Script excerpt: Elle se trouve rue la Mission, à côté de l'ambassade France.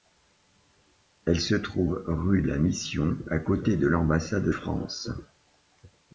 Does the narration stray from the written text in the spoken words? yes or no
no